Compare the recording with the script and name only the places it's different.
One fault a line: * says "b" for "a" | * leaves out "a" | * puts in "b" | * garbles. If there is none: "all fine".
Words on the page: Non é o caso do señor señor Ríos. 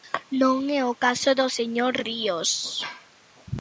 * leaves out "señor"